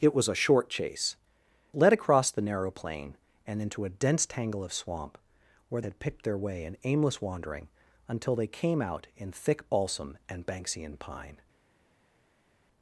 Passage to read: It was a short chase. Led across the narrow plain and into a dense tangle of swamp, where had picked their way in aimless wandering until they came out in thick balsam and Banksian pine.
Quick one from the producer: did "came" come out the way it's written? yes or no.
yes